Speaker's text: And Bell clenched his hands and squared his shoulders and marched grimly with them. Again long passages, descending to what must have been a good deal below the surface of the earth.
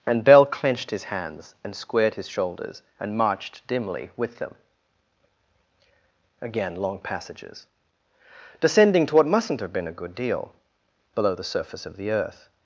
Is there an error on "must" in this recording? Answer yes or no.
yes